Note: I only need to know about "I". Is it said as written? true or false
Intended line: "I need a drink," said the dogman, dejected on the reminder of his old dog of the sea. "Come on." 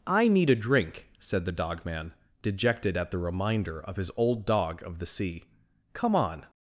true